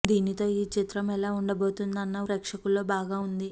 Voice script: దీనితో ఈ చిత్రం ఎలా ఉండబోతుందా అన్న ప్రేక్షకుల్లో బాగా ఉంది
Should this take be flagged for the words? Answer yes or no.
no